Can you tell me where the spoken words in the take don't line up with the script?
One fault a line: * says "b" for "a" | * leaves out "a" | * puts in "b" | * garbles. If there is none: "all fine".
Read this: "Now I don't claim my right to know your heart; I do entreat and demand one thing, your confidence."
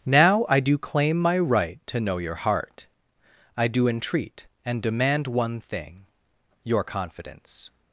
* says "do" for "don't"